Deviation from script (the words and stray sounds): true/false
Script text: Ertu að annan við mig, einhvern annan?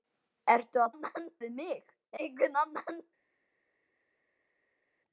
false